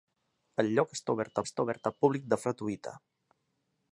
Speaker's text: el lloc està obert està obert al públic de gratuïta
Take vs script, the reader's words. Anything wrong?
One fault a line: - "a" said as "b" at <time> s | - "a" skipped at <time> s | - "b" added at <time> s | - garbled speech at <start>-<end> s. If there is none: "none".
none